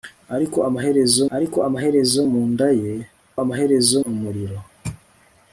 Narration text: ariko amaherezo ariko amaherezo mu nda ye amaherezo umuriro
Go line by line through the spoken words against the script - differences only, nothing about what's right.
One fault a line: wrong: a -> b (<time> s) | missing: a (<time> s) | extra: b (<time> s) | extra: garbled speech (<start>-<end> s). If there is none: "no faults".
no faults